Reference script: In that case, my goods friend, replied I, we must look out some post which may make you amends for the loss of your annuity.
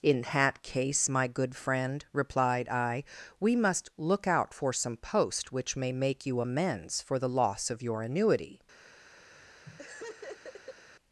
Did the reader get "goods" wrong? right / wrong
wrong